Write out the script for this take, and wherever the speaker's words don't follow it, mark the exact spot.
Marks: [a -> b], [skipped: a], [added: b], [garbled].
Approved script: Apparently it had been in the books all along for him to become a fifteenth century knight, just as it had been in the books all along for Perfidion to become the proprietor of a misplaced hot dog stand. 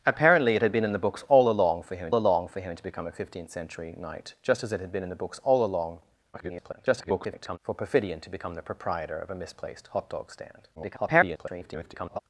Apparently it had been in the books all along for him [added: along for him] to become a fifteenth century knight, just as it had been in the books all along [garbled] for Perfidion to become the proprietor of a misplaced hot dog stand. [garbled]